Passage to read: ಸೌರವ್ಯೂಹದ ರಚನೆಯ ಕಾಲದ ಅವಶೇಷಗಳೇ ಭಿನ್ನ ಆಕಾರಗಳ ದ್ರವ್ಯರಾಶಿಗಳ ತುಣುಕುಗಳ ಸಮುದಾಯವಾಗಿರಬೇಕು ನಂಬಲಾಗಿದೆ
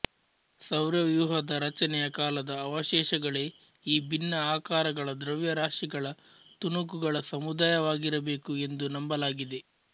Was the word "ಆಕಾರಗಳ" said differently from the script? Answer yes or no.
no